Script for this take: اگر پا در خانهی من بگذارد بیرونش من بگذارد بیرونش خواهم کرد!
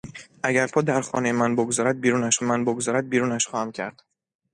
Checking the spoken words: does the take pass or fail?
pass